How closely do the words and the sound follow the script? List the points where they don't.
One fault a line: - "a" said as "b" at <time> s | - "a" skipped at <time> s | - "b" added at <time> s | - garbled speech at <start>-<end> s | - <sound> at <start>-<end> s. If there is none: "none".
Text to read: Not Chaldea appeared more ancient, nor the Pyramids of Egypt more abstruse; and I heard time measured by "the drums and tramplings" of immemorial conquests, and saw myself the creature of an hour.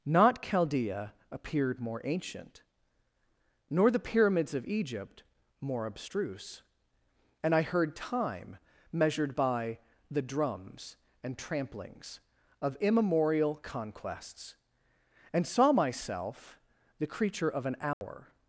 - dropout at 17.9-18.0 s